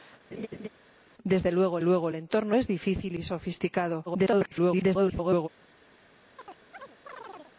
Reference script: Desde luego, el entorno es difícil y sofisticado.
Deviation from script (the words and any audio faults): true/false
true